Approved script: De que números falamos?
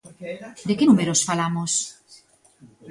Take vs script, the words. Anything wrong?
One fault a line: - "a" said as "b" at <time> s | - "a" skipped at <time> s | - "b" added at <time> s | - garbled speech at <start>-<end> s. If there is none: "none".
none